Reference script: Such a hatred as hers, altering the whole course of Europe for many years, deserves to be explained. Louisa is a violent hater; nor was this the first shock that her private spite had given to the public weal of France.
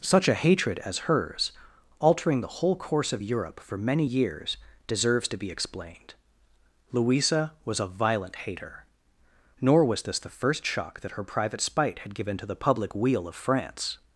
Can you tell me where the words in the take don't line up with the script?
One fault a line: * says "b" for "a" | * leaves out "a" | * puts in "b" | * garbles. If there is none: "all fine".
* says "was" for "is"